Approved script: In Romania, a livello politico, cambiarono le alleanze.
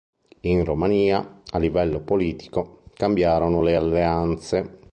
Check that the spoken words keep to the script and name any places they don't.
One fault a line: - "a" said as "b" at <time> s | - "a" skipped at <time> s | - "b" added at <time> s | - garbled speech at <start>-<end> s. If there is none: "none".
none